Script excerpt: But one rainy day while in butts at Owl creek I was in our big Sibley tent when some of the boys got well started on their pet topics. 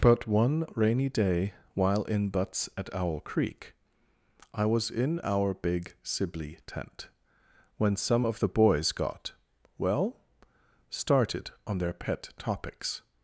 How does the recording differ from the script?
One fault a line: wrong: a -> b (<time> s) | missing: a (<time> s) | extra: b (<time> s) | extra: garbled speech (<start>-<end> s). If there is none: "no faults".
no faults